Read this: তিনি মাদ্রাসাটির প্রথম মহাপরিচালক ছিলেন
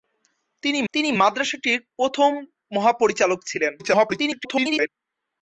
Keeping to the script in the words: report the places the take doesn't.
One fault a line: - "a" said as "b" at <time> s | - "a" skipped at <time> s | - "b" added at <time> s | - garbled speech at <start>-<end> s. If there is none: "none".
- "তিনি" added at 0.9 s
- garbled speech at 3.8-4.9 s